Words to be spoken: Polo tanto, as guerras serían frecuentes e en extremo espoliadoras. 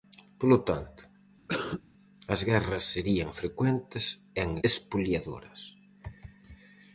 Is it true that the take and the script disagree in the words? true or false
true